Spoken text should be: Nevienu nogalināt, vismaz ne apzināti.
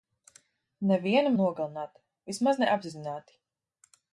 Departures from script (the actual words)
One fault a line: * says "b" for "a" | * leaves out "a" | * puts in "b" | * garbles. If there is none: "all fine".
all fine